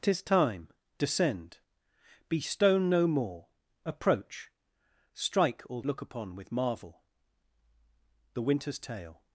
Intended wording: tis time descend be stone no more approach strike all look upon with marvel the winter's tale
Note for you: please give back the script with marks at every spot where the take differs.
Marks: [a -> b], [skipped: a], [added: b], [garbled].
tis time descend be stone no more approach strike all look upon with marvel the winter's tale